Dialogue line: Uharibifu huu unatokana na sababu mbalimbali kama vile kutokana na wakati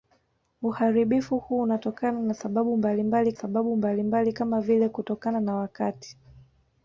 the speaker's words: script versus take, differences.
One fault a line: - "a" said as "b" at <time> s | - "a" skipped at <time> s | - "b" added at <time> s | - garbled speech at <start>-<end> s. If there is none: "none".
- "sababu mbalimbali" added at 3.3 s